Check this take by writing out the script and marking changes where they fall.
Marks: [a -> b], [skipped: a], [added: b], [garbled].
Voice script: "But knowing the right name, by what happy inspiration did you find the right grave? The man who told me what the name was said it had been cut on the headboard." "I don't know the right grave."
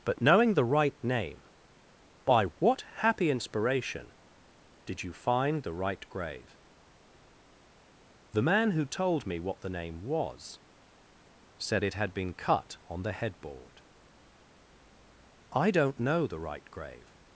"But knowing the right name, by what happy inspiration did you find the right grave? The man who told me what the name was said it had been cut on the headboard." "I don't know the right grave."